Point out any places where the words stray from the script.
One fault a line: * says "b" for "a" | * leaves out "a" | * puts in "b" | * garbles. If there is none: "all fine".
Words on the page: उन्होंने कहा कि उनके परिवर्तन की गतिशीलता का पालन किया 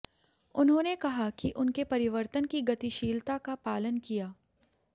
all fine